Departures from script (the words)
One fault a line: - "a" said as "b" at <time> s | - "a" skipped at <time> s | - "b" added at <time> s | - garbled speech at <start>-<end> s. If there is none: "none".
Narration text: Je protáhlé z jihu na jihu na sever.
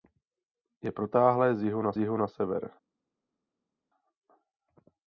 none